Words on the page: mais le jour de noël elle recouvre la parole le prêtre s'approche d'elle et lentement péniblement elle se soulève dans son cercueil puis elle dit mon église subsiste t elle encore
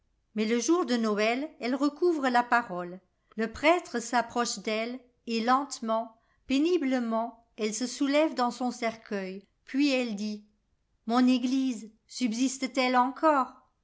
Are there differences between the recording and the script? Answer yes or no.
no